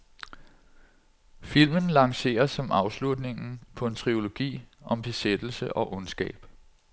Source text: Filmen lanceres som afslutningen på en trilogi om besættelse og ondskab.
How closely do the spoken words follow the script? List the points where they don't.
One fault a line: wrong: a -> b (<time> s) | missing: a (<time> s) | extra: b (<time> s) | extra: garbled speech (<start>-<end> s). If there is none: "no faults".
no faults